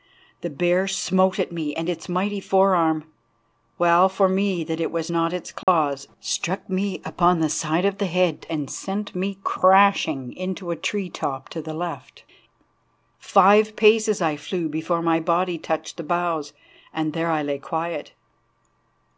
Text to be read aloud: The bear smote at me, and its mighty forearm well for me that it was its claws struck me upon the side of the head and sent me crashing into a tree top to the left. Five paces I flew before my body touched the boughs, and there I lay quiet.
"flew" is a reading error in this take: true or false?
false